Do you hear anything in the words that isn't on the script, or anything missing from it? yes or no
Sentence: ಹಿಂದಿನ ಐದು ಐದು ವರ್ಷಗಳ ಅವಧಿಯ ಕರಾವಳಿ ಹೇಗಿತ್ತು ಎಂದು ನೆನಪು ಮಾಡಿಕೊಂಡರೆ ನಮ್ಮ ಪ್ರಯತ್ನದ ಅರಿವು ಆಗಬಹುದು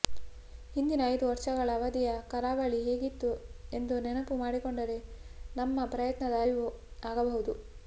yes